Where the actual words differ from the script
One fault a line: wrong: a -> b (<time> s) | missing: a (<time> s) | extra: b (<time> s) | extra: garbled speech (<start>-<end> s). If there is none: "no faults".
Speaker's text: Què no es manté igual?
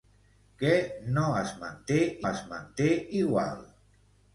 extra: es manté (2.3 s)